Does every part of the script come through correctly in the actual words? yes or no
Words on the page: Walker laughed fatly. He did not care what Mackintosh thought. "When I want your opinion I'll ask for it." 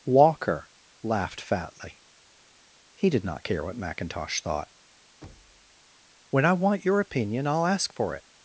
yes